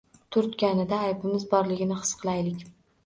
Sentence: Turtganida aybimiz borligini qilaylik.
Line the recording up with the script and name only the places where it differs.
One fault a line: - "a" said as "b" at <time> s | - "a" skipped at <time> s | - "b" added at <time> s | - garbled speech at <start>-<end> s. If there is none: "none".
- "his" added at 2.0 s